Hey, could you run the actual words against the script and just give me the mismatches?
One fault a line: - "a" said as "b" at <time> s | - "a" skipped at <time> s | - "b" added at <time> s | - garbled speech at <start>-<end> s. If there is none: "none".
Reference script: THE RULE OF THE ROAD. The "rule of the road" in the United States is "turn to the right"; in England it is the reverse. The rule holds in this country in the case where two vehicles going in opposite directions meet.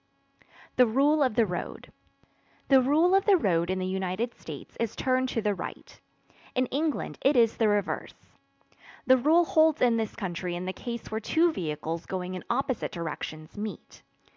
none